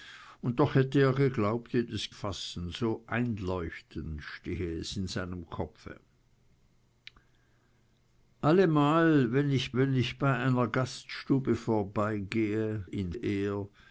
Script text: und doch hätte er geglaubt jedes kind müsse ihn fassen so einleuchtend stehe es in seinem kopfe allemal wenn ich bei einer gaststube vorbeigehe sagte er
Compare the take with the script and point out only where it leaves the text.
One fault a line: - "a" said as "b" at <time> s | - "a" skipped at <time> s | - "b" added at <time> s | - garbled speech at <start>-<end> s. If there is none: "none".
- "kind müsse ihn" skipped at 2.1 s
- "wenn ich" added at 9.8 s
- "sagte" said as "ihn" at 12.8 s